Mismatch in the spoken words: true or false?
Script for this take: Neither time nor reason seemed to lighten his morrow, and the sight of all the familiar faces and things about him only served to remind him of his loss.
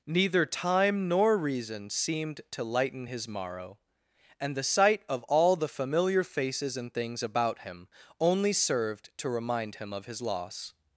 false